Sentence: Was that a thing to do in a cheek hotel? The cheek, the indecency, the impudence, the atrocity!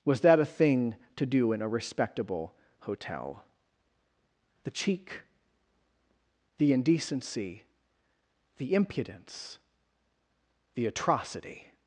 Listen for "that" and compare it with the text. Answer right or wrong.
right